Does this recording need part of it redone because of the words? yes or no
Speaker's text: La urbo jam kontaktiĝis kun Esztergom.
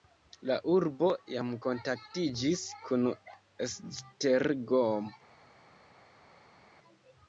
no